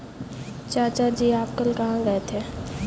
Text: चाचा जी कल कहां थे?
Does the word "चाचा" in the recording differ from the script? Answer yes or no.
no